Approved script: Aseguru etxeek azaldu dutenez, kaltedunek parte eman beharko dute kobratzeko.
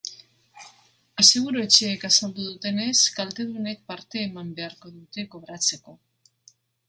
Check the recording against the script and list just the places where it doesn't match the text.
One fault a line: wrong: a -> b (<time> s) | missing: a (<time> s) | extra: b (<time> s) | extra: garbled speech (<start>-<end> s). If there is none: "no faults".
no faults